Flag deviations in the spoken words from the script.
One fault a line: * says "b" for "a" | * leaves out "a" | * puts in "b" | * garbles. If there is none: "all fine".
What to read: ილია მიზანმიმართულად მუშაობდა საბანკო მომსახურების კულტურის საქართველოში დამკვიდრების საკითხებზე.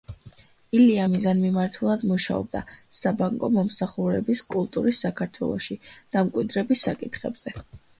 all fine